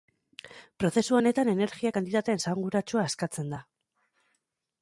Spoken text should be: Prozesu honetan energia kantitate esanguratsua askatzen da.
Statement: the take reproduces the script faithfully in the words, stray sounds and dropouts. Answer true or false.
true